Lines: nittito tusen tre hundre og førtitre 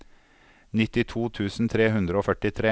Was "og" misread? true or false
false